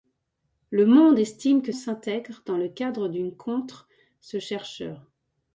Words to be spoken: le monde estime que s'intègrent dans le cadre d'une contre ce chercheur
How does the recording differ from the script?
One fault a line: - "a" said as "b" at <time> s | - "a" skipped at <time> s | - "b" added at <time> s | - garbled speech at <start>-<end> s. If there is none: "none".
none